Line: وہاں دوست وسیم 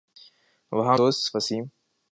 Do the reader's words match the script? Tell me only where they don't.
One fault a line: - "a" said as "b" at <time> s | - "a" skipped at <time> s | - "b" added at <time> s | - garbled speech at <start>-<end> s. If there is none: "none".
none